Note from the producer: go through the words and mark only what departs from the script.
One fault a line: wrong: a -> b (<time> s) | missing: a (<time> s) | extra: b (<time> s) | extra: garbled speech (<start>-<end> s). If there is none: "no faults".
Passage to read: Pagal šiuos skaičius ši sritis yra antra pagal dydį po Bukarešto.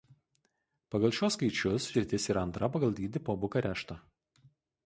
missing: ši (1.9 s)